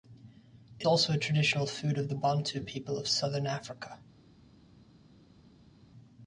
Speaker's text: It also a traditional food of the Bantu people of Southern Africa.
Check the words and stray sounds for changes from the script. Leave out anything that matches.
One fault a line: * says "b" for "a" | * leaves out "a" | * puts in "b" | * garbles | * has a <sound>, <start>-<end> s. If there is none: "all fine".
all fine